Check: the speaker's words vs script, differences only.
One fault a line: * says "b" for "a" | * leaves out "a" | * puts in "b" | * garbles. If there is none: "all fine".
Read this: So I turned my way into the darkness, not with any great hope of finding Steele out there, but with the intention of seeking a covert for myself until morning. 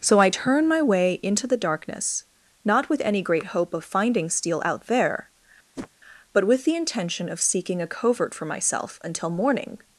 * says "turn" for "turned"